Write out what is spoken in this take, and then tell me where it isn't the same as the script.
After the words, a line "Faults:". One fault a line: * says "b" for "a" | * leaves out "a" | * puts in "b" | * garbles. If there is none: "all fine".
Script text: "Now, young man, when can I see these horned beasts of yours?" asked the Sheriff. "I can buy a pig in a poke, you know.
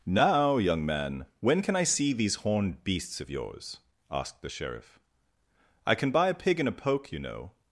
"Now, young man, when can I see these horned beasts of yours?" asked the Sheriff. "I can buy a pig in a poke, you know.
Faults:
all fine